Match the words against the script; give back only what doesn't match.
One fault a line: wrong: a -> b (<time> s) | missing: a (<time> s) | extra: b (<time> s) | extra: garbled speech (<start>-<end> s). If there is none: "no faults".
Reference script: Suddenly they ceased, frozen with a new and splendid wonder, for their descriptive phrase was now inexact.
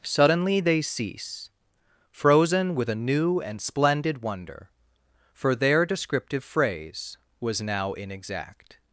wrong: ceased -> cease (0.8 s)